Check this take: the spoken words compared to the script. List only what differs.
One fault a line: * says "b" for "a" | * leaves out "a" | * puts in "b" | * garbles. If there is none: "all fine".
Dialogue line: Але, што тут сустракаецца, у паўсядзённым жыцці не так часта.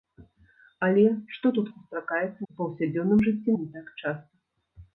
all fine